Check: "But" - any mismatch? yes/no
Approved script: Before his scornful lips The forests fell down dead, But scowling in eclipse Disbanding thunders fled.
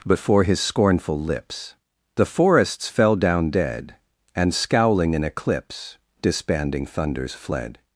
yes